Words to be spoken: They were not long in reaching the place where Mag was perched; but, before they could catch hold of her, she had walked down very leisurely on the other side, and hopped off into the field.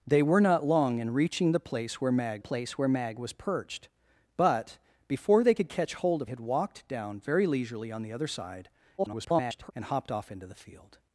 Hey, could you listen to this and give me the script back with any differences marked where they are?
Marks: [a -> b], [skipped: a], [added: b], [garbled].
They were not long in reaching the place where Mag [added: place where Mag] was perched; but, before they could catch hold of [skipped: her, she] had walked down very leisurely on the other side, [garbled] and hopped off into the field.